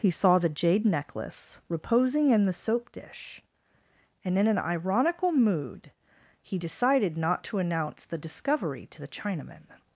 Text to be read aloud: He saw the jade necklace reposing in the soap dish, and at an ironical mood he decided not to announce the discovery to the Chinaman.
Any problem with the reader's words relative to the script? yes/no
yes